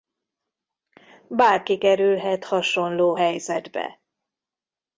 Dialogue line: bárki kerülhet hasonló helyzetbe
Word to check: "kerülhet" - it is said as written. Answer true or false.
true